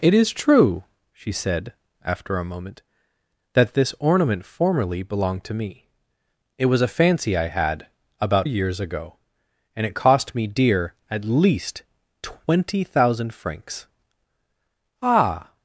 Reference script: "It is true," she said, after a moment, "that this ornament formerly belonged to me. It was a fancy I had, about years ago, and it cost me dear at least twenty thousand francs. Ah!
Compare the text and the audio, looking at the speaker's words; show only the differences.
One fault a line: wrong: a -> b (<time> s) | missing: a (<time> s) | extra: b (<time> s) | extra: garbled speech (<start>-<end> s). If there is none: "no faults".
no faults